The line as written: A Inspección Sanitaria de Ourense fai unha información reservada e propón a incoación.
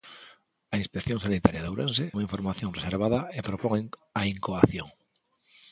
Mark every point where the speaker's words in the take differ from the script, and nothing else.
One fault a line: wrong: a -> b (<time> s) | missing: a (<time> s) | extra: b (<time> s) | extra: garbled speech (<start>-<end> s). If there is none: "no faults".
missing: fai (2.0 s)